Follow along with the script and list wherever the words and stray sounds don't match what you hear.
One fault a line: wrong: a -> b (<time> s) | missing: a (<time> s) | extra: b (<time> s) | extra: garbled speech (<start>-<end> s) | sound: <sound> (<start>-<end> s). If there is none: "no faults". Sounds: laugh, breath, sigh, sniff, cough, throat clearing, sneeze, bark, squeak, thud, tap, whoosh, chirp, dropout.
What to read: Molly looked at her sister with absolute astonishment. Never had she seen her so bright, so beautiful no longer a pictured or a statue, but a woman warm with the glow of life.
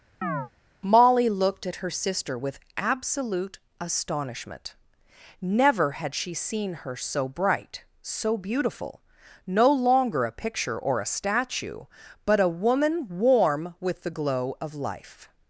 sound: chirp (0.2-0.5 s)
wrong: pictured -> picture (10.3 s)